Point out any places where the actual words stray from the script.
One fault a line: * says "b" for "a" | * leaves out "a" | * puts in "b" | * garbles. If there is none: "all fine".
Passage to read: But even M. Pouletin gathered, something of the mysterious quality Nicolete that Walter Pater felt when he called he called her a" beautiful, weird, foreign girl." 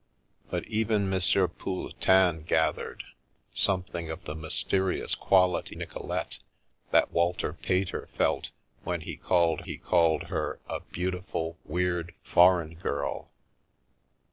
all fine